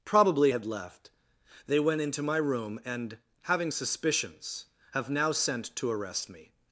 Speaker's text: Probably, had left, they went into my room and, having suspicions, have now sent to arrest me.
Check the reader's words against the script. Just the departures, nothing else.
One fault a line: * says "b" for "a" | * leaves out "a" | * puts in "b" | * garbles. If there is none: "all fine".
all fine